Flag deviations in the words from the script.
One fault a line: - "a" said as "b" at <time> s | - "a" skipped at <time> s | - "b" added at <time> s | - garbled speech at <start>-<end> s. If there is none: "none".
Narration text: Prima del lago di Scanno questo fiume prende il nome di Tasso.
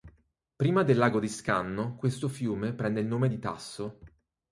none